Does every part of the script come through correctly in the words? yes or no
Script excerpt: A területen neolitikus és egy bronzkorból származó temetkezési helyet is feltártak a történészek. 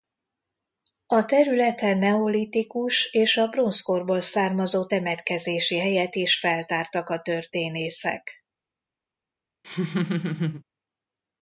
no